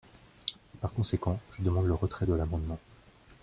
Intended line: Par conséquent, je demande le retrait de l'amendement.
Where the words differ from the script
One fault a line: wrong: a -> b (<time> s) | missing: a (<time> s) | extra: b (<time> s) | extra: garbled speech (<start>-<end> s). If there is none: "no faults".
no faults